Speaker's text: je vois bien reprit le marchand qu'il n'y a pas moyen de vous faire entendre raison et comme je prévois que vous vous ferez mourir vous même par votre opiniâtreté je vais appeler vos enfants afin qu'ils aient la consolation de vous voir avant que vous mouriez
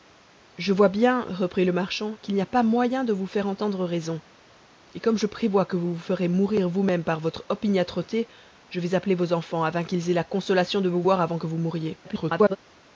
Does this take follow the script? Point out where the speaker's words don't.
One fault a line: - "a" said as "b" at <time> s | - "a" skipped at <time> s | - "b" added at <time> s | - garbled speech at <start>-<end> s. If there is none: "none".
- garbled speech at 12.0-12.6 s